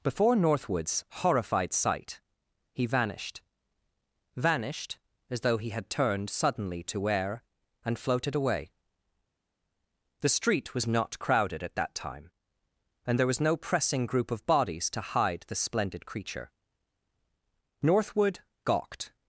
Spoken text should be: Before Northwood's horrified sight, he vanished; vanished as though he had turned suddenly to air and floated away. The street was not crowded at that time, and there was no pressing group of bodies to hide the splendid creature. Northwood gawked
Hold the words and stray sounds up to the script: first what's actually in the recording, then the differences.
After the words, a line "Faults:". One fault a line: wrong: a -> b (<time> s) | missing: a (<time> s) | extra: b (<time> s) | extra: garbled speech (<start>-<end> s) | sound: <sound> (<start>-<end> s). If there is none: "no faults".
Before Northwood's horrified sight, he vanished; vanished as though he had turned suddenly to air and floated away. The street was not crowded at that time, and there was no pressing group of bodies to hide the splendid creature. Northwood gawked
Faults:
no faults